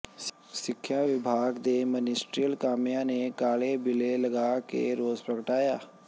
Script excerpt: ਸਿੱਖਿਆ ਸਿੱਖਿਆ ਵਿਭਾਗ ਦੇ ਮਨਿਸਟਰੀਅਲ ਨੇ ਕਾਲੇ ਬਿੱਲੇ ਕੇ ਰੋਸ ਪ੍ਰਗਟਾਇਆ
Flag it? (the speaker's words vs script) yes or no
yes